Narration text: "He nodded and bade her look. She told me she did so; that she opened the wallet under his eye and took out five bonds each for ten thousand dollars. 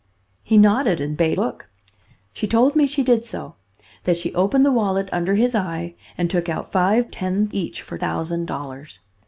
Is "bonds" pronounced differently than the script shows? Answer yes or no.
yes